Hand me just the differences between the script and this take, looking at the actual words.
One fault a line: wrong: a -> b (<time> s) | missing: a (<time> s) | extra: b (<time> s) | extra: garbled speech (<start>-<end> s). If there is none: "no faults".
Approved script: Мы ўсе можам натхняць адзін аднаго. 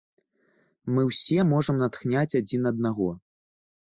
no faults